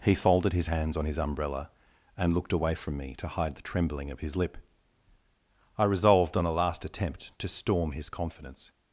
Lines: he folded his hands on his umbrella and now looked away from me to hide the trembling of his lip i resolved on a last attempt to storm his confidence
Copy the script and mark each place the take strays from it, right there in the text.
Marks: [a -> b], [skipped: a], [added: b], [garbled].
he folded his hands on his umbrella and [skipped: now] looked away from me to hide the trembling of his lip i resolved on a last attempt to storm his confidence